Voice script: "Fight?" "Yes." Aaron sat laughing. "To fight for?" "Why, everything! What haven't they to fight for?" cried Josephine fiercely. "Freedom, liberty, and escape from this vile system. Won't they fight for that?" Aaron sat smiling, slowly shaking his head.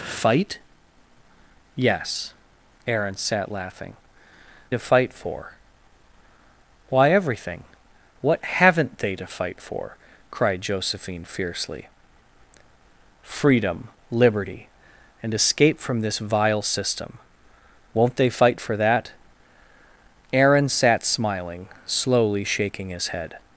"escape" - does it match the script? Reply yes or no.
yes